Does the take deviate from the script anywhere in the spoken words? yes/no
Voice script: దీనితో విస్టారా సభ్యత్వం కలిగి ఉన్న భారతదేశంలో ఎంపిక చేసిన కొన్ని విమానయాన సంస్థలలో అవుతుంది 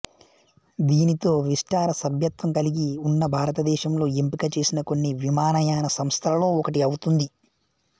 yes